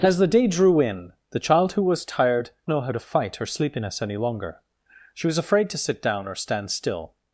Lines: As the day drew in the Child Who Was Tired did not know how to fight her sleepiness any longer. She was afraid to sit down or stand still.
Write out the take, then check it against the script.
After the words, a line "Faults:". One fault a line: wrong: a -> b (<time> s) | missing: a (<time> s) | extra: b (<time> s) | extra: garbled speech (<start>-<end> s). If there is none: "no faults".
As the day drew in the Child Who Was Tired know how to fight her sleepiness any longer. She was afraid to sit down or stand still.
Faults:
missing: did not (2.5 s)